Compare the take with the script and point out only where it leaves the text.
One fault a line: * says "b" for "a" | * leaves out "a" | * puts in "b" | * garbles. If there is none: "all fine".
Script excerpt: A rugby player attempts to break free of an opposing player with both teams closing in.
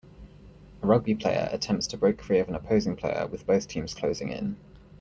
all fine